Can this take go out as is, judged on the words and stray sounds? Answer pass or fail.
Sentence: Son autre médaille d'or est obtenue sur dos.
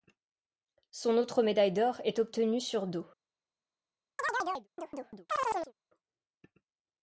fail